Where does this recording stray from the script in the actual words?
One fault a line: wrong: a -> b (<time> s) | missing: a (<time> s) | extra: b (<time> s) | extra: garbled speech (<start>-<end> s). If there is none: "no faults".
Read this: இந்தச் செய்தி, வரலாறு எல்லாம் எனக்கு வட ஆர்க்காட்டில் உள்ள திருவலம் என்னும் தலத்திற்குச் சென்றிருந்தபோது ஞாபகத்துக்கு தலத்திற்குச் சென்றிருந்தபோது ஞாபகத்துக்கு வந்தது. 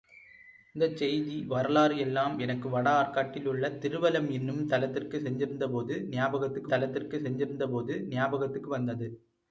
no faults